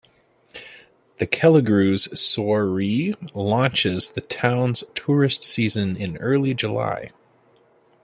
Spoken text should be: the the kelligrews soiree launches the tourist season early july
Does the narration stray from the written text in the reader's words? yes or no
yes